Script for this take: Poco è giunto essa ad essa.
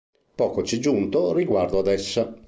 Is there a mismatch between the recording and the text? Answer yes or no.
yes